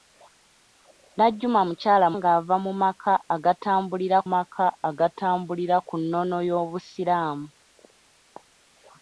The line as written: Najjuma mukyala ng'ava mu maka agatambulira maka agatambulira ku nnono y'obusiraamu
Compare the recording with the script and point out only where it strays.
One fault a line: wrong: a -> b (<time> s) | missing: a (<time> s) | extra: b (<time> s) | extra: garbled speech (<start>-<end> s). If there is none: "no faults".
no faults